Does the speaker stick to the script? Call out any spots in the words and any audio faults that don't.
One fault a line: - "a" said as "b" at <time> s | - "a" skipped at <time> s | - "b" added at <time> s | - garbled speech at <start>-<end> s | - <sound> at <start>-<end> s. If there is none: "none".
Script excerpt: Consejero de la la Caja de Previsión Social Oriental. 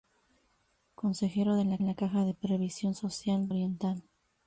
none